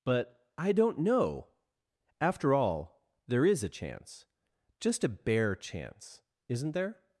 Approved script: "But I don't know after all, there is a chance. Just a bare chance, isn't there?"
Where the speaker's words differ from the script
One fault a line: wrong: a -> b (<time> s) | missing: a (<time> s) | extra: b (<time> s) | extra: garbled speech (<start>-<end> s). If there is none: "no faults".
no faults